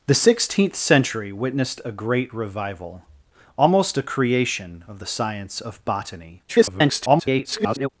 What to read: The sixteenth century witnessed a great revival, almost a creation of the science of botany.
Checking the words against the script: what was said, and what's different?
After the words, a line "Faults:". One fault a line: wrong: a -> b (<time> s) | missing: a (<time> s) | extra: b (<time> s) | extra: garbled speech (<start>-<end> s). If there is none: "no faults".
The sixteenth century witnessed a great revival, almost a creation of the science of botany. [garbled]
Faults:
extra: garbled speech (6.5-7.9 s)